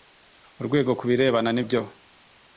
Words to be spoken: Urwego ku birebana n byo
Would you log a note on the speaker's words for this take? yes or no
no